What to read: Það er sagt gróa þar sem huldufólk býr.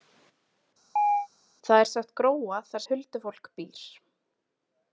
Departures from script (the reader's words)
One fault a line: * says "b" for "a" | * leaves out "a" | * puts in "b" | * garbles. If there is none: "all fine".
* leaves out "sem"